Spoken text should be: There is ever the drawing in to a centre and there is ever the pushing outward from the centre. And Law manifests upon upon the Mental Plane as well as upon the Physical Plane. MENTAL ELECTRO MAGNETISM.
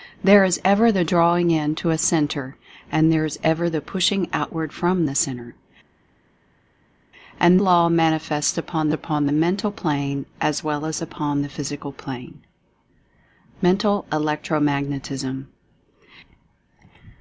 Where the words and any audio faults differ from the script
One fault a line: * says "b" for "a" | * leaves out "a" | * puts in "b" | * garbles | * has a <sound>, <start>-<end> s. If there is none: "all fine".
all fine